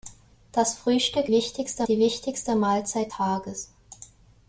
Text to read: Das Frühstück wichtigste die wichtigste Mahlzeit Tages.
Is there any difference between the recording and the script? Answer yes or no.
no